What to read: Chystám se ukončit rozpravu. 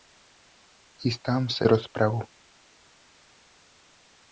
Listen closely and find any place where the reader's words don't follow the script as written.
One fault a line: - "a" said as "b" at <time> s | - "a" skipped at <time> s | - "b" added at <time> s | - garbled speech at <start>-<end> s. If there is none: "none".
- "ukončit" skipped at 1.7 s